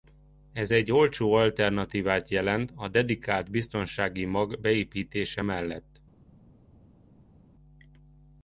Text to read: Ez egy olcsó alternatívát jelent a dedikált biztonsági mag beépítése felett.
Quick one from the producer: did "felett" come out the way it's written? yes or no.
no